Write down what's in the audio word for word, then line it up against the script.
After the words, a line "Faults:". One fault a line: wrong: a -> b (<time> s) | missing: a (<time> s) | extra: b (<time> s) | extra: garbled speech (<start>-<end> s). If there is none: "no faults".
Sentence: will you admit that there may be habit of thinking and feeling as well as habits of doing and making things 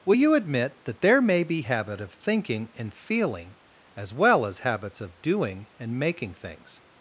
will you admit that there may be habit of thinking and feeling as well as habits of doing and making things
Faults:
no faults